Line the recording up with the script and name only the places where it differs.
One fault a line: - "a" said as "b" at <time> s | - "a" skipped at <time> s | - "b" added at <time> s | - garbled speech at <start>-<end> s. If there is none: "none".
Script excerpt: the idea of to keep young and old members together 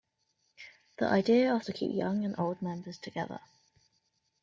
none